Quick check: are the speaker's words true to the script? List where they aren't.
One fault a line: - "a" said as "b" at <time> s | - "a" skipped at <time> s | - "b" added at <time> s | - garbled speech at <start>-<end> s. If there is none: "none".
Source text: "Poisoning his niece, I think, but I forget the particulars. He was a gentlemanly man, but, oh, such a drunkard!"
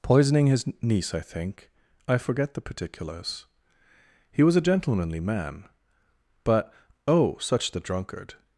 - "but" skipped at 1.7 s
- "a" said as "the" at 7.7 s